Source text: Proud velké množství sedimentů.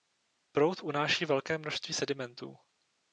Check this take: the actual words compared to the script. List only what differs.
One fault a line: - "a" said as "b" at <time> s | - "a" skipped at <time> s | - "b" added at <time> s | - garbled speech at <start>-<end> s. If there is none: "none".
- "unáší" added at 0.8 s